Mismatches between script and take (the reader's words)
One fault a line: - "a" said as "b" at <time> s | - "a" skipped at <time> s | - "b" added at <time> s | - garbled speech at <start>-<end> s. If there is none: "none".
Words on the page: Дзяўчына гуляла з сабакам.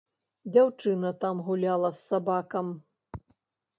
- "там" added at 1.2 s